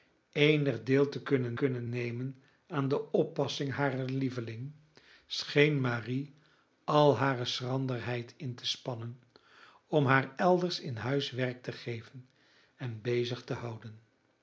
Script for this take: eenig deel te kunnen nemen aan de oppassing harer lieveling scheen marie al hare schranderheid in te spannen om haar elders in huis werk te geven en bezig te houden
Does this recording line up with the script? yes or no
no